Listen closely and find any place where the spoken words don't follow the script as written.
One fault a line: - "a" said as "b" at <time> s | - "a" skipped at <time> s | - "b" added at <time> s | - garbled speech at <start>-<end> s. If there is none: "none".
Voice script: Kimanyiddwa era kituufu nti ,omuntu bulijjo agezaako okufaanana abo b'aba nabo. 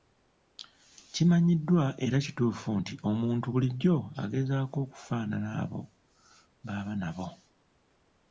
none